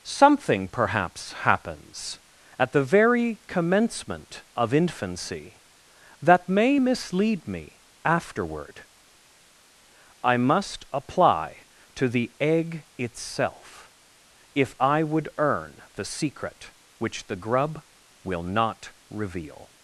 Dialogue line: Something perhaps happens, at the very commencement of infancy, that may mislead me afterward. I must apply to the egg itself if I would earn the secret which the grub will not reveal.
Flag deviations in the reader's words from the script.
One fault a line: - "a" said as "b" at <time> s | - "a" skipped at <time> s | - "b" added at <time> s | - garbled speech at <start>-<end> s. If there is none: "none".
none